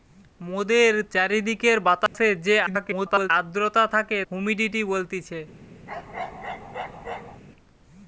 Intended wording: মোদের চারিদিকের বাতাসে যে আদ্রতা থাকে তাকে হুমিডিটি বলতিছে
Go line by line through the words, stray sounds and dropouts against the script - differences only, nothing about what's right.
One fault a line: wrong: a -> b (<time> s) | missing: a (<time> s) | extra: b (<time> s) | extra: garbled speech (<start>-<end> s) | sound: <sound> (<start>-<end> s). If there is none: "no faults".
sound: dropout (2.1-2.1 s)
extra: garbled speech (2.7-3.3 s)
missing: তাকে (4.2 s)
sound: bark (5.9-7.4 s)